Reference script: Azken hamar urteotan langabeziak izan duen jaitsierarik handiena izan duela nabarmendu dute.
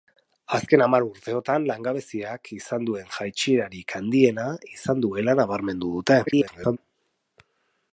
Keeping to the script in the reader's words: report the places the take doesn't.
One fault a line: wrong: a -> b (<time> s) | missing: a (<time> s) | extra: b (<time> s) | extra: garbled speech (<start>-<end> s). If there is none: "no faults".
extra: garbled speech (6.3-6.8 s)